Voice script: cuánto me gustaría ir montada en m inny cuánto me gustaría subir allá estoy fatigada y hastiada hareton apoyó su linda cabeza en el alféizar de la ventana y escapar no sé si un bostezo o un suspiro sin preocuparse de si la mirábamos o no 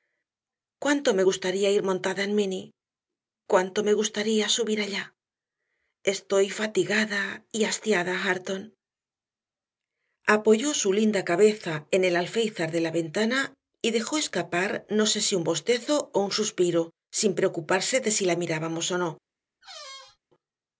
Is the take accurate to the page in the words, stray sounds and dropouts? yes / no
no